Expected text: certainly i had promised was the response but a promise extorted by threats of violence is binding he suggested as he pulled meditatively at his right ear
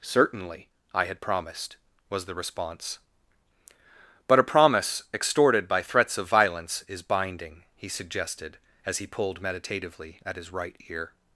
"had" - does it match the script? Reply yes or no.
yes